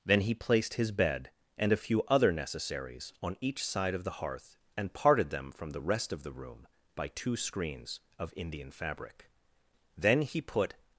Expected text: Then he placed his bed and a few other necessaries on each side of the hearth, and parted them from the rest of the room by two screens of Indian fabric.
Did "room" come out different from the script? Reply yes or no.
no